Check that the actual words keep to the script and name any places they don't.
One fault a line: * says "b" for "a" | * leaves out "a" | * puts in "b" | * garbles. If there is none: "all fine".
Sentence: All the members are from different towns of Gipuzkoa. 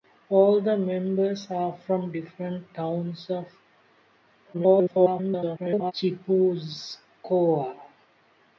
* garbles